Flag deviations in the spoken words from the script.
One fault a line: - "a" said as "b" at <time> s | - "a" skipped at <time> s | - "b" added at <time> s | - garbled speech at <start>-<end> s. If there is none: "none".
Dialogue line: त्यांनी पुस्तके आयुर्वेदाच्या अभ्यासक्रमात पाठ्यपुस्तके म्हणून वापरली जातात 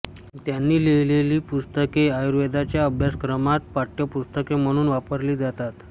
- "लिहिलेली" added at 0.8 s